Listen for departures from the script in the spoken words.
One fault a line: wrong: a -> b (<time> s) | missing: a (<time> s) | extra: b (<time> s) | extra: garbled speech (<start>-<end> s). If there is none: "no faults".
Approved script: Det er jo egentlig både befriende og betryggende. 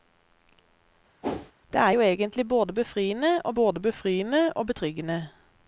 extra: både befriende og (3.5 s)